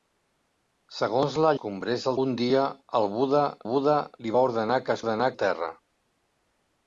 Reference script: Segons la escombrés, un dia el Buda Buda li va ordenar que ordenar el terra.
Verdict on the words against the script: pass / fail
pass